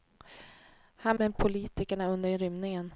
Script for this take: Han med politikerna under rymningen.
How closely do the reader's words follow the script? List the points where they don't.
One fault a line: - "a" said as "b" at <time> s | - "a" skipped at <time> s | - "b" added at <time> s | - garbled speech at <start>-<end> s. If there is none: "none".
none